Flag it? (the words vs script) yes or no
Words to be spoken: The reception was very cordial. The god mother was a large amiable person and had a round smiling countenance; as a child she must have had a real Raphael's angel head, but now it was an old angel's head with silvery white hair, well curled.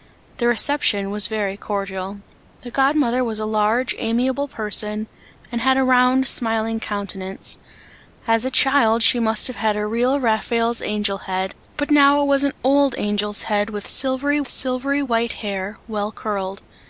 yes